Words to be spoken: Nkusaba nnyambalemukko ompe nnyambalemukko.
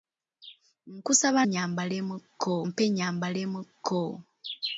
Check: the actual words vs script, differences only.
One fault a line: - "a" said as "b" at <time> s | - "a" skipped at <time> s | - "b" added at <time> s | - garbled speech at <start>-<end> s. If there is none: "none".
none